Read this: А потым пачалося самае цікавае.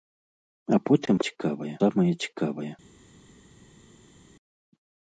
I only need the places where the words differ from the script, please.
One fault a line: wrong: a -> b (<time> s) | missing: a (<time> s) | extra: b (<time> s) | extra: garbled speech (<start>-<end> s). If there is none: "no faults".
wrong: пачалося -> цікавае (1.3 s)